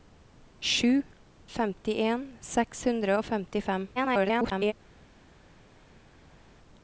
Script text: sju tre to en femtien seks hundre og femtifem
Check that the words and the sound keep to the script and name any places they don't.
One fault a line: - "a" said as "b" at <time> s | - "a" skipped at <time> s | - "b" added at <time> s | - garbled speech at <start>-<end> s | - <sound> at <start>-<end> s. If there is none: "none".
- "tre to en" skipped at 1.0 s
- garbled speech at 4.0-4.7 s